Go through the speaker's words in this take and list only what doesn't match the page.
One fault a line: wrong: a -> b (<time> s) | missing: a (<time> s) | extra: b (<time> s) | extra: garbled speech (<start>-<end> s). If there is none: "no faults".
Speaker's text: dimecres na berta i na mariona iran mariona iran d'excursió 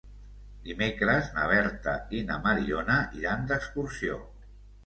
missing: mariona iran (3.5 s)